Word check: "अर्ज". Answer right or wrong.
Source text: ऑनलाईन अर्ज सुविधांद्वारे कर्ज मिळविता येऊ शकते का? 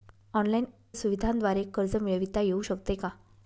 wrong